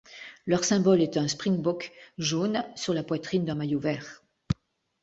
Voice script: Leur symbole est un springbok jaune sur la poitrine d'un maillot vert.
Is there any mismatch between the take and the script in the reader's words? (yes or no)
no